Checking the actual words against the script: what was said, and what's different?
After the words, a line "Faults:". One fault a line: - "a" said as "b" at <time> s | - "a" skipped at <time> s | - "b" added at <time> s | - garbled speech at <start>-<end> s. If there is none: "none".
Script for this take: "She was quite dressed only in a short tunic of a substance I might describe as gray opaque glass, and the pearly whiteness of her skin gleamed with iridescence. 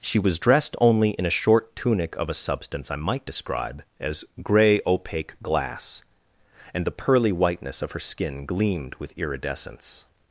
"She was dressed only in a short tunic of a substance I might describe as gray opaque glass, and the pearly whiteness of her skin gleamed with iridescence.
Faults:
- "quite" skipped at 0.4 s